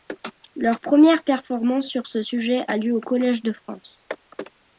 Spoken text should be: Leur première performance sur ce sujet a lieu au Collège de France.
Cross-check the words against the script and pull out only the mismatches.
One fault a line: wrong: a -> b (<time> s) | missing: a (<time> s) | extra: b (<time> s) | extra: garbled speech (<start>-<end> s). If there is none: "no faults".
no faults